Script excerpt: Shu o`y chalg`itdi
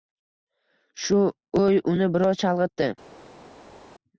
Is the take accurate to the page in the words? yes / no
no